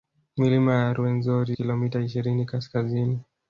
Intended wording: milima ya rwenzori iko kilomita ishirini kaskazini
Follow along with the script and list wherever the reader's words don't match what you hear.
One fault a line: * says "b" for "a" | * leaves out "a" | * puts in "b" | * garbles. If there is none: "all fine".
* leaves out "iko"